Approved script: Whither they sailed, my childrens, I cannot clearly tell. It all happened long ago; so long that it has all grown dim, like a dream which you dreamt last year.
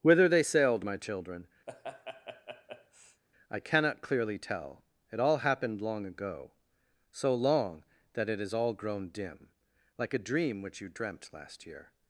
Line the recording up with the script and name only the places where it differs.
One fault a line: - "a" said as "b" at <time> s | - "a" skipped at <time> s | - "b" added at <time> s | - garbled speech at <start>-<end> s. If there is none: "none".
- "childrens" said as "children" at 1.0 s